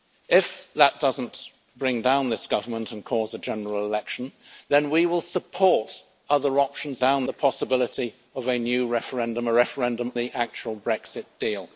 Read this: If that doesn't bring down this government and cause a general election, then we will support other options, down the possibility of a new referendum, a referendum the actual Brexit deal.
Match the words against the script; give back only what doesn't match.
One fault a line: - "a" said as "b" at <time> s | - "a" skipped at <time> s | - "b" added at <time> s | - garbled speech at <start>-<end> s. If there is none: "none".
none